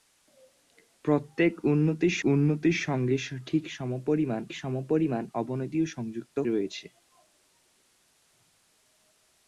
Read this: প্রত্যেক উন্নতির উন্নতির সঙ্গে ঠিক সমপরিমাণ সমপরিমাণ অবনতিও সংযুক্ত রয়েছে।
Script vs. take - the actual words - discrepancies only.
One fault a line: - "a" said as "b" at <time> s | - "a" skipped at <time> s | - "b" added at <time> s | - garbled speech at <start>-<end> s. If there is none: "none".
none